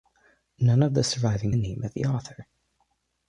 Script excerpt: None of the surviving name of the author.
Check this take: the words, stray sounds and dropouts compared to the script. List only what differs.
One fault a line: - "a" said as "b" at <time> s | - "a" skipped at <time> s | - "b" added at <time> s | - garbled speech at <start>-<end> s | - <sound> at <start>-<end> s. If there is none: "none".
none